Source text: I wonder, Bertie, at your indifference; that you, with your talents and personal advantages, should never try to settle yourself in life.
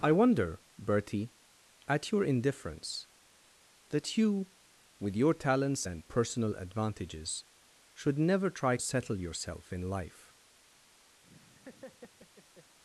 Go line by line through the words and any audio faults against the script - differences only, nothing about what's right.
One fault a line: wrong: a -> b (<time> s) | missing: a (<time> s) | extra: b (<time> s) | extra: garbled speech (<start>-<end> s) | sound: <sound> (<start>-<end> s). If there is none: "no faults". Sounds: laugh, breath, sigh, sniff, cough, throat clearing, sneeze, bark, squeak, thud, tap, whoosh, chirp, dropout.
missing: to (8.8 s)
sound: laugh (11.2-12.8 s)